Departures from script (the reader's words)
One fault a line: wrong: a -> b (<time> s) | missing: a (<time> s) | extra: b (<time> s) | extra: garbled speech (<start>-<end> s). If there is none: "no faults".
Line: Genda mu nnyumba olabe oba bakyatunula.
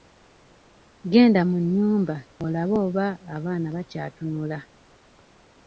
extra: abaana (3.4 s)